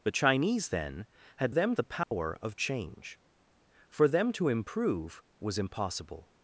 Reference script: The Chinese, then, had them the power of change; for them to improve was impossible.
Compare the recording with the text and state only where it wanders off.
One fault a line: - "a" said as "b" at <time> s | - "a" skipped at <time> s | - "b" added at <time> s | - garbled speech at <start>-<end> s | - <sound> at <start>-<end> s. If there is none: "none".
- dropout at 2.0-2.1 s